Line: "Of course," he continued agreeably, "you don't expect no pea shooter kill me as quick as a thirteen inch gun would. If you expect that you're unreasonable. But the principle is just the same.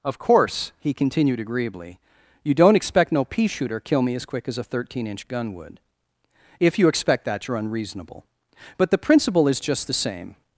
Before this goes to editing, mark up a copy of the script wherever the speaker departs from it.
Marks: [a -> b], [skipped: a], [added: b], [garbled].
"Of course," he continued agreeably, "you don't expect no pea shooter kill me as quick as a thirteen inch gun would. If you expect that you're unreasonable. But the principle is just the same.